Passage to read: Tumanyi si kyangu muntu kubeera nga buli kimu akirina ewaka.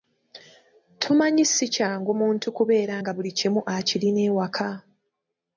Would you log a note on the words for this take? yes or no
no